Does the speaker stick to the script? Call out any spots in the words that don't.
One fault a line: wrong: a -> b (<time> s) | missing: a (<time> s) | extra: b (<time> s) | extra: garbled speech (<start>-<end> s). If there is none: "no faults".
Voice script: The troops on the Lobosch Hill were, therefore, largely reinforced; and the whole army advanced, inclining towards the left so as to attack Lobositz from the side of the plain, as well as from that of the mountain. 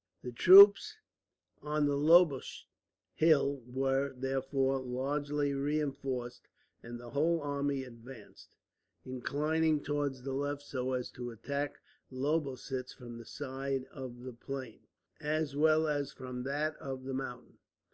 no faults